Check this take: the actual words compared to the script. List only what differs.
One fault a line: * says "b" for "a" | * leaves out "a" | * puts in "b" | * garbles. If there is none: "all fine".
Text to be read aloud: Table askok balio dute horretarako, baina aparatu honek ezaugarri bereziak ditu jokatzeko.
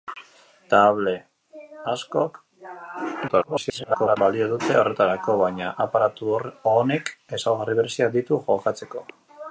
* garbles